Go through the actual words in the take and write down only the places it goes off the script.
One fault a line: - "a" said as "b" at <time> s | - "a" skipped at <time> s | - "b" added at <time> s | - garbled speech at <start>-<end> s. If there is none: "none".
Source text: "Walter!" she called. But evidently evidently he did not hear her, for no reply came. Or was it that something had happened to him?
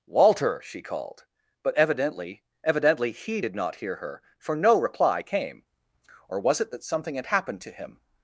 none